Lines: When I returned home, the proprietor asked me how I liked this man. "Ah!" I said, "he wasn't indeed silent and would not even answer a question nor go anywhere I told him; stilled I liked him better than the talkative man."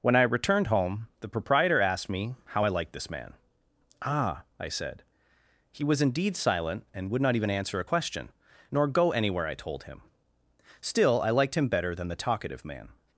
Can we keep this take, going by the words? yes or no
no